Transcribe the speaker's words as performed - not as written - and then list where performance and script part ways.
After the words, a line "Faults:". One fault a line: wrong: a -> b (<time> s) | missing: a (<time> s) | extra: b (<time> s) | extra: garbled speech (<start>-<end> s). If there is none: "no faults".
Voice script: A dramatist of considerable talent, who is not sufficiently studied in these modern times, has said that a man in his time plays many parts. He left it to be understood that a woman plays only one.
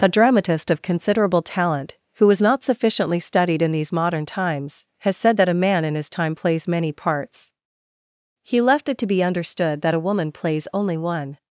A dramatist of considerable talent, who was not sufficiently studied in these modern times, has said that a man in his time plays many parts. He left it to be understood that a woman plays only one.
Faults:
wrong: is -> was (2.2 s)